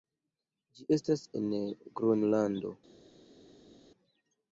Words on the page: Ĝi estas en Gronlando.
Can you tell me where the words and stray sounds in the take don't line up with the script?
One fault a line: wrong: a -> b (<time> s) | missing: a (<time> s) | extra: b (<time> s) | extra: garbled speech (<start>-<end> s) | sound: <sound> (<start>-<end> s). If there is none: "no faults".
no faults